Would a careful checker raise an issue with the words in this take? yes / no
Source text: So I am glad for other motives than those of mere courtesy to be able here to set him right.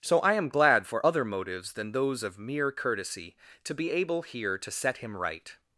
no